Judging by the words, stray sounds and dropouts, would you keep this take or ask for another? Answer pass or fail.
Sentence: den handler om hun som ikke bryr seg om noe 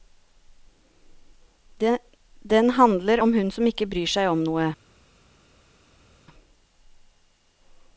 pass